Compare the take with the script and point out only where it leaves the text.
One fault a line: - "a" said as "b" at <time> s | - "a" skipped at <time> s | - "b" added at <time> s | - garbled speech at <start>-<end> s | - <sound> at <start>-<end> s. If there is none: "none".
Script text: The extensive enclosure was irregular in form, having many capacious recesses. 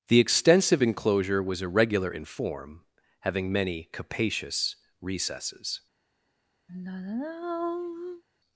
- sigh at 6.7-8.2 s